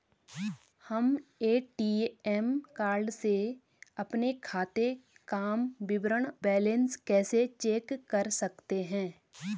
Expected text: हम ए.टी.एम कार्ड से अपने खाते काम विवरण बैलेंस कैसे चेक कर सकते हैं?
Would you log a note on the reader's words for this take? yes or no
no